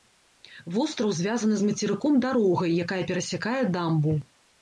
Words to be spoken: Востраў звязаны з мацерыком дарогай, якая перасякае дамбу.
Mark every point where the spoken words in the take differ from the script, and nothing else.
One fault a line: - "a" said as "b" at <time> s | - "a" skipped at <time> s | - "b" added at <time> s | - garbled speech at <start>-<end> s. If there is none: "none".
none